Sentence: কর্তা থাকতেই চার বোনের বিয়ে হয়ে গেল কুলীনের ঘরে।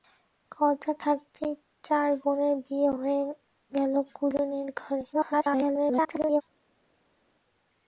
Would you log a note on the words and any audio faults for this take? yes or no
yes